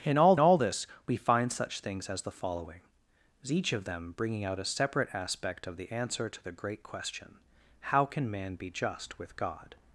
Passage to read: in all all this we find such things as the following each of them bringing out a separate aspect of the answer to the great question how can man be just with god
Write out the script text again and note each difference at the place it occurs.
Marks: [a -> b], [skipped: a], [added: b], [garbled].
in all all this we find such things as the following each of them bringing out a separate aspect of the answer to the great question how can man be just with god